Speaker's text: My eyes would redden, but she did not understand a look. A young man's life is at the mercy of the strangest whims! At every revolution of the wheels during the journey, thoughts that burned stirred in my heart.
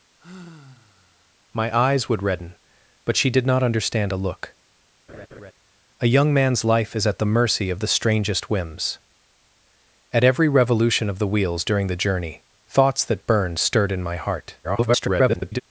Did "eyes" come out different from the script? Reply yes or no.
no